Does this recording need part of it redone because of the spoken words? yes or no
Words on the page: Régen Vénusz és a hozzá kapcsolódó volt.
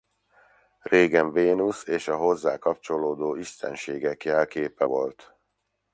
yes